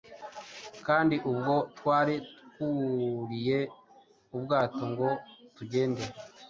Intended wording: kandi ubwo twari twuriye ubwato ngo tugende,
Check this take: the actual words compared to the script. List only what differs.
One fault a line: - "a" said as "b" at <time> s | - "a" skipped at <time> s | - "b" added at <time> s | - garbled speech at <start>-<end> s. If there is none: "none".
none